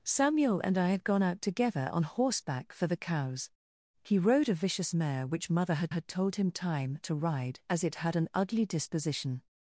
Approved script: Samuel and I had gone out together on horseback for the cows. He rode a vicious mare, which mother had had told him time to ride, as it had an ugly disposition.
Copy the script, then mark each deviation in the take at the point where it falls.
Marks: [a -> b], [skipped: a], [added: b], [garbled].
Samuel and I had gone out together on horseback for the cows. He rode a vicious mare, which mother had had told him time to ride, as it had an ugly disposition.